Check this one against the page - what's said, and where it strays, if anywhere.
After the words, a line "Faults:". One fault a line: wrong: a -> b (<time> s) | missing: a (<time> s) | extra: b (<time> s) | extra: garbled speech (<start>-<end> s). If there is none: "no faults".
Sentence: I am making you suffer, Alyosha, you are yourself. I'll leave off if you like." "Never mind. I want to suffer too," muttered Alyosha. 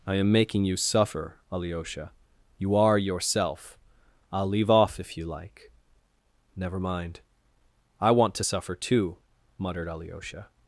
I am making you suffer, Alyosha, you are yourself. I'll leave off if you like." "Never mind. I want to suffer too," muttered Alyosha.
Faults:
no faults